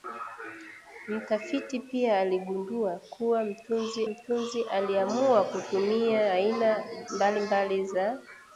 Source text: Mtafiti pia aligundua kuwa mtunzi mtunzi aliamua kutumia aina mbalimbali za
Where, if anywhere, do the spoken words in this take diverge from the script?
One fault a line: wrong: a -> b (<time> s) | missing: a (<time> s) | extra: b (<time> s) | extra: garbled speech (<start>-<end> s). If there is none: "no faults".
no faults